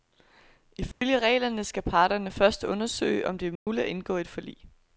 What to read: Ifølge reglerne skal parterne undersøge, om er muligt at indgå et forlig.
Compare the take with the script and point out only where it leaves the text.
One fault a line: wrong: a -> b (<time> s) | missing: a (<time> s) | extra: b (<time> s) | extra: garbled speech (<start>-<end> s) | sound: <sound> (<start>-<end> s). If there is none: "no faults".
sound: dropout (0.9-1.0 s)
extra: først (2.3 s)
extra: det (3.4 s)
sound: dropout (3.6-3.7 s)